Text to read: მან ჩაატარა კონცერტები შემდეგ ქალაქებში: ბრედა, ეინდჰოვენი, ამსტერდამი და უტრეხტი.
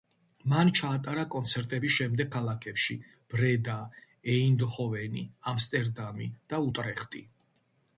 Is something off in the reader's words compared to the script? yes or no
no